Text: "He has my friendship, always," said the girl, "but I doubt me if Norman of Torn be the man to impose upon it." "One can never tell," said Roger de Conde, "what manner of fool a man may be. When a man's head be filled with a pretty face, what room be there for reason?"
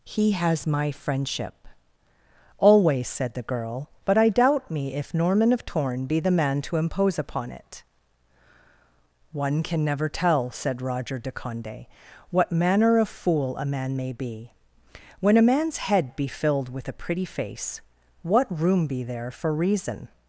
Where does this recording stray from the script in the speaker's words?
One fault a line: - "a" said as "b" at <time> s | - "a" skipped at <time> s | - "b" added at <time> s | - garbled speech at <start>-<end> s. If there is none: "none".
none